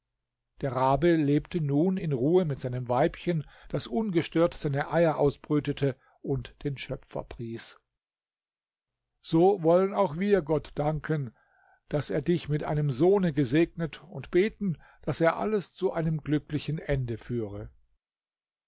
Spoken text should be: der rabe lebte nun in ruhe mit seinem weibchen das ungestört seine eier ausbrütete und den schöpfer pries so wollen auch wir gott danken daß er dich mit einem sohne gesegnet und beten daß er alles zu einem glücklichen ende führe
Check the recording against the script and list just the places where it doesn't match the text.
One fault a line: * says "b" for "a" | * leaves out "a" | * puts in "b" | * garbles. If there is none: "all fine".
all fine